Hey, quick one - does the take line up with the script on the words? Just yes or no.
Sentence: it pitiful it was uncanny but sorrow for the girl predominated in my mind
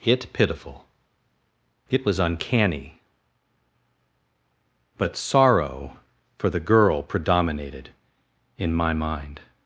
yes